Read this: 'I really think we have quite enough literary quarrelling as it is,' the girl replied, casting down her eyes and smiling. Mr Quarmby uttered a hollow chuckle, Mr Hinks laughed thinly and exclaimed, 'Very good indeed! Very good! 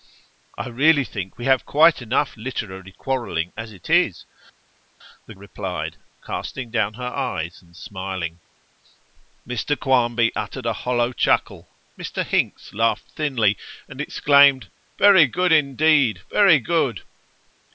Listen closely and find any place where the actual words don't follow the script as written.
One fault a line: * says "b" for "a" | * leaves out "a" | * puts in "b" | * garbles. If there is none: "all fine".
* leaves out "girl"